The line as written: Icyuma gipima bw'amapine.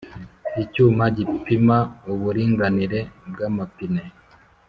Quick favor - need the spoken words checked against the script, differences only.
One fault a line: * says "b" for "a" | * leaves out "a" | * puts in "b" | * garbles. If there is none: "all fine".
* puts in "uburinganire"